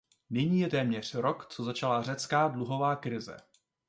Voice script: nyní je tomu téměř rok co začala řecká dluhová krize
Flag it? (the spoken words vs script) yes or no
yes